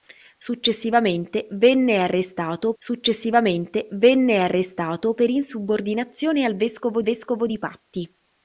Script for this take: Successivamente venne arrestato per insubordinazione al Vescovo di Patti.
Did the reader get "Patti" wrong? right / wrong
right